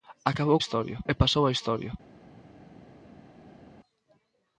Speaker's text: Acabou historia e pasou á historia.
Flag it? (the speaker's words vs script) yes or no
no